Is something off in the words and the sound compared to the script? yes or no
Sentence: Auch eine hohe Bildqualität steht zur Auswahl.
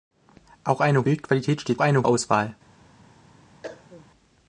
yes